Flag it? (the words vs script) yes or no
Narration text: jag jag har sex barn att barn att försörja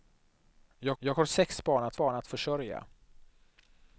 no